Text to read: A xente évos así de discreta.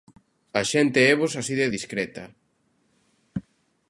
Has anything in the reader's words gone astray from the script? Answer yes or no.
no